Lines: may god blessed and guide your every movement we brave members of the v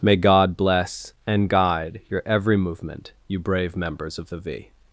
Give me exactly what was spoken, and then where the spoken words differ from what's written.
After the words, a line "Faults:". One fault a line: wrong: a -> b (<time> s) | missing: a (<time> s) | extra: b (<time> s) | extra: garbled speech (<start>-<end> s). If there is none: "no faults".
may god bless and guide your every movement you brave members of the v
Faults:
wrong: blessed -> bless (0.6 s)
wrong: we -> you (3.3 s)